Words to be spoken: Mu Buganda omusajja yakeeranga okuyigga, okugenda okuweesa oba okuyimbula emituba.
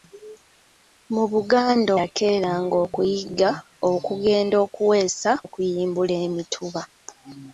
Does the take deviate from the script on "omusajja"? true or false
true